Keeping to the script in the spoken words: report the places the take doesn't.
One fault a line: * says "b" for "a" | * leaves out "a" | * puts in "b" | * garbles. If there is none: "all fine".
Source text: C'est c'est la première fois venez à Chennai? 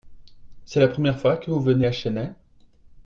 * leaves out "c'est"
* puts in "que vous"